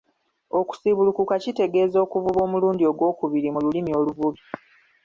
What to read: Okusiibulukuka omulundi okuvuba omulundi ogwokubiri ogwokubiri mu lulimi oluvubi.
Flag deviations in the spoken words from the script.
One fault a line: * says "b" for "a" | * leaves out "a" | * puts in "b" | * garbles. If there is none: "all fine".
* says "kitegeeza" for "omulundi"
* leaves out "ogwokubiri"